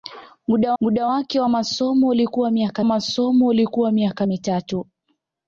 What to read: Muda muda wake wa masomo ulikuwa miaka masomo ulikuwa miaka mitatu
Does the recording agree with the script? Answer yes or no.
yes